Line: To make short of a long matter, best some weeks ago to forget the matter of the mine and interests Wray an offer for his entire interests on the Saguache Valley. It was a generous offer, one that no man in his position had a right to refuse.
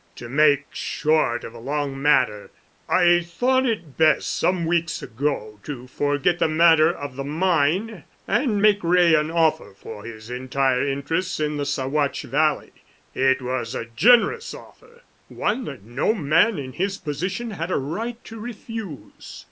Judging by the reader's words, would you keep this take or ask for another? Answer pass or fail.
fail